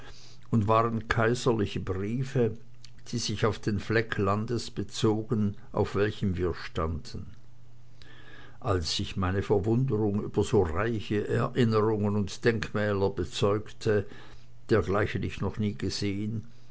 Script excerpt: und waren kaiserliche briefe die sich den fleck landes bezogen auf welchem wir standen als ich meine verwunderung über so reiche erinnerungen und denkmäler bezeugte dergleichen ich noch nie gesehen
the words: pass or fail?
fail